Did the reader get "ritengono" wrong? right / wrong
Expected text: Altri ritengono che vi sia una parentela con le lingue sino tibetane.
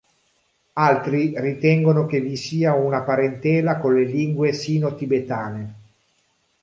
right